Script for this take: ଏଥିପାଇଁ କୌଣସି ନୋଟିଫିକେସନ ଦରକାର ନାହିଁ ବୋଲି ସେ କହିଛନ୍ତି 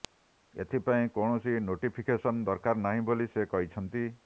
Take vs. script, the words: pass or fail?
pass